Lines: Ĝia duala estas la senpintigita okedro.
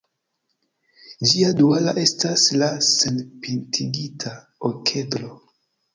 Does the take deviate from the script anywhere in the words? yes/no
no